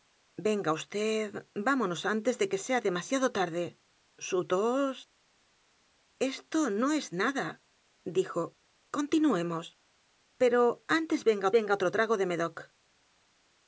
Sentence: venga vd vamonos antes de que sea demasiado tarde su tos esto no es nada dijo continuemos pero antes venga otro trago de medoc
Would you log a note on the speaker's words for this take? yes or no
yes